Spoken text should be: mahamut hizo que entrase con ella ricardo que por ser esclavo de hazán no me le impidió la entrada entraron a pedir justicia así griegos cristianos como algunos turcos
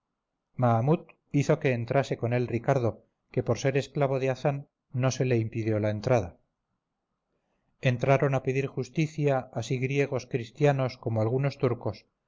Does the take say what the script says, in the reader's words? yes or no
no